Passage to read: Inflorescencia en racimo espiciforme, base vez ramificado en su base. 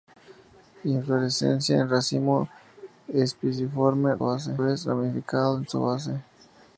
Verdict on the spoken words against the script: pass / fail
pass